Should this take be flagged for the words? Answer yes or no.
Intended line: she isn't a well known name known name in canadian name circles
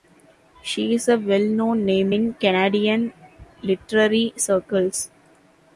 yes